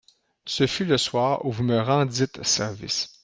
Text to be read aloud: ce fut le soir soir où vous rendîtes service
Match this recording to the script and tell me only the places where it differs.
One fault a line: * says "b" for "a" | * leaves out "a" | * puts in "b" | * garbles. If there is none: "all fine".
* leaves out "soir"
* puts in "me"